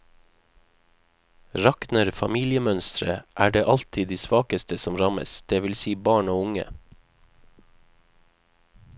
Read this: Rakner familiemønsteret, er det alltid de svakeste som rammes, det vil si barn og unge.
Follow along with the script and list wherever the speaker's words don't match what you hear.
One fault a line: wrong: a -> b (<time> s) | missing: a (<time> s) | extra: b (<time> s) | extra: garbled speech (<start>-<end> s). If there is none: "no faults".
no faults